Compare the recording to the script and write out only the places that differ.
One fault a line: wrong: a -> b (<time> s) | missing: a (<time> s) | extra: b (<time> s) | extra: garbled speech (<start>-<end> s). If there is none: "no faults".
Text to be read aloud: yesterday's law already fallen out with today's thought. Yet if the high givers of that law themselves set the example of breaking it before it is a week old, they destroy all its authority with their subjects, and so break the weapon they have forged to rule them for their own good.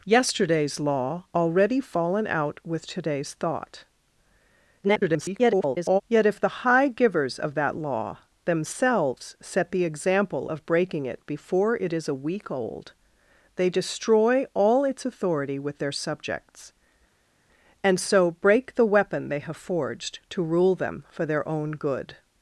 extra: garbled speech (4.8-6.0 s)